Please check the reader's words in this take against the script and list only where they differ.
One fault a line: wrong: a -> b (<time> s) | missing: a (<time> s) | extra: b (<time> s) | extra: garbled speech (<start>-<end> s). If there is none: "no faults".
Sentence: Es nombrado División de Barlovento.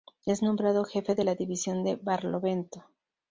extra: Jefe de la (0.8 s)